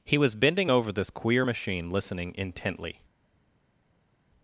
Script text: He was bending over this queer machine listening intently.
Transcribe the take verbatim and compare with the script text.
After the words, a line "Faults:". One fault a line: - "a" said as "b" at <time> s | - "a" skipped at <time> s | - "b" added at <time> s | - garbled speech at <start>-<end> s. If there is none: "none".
He was bending over this queer machine listening intently.
Faults:
none